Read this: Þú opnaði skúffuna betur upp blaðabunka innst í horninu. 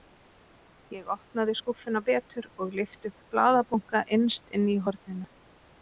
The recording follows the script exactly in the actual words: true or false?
false